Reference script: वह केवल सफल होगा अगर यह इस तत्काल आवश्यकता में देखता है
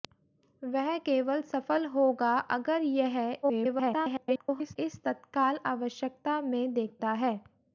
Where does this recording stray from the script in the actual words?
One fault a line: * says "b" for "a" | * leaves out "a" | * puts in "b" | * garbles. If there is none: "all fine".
* garbles